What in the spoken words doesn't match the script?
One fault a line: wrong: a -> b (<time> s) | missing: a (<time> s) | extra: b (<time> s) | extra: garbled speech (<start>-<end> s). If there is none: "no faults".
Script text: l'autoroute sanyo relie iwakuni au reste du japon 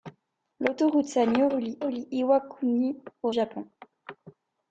extra: relie (1.8 s)
missing: reste du (3.3 s)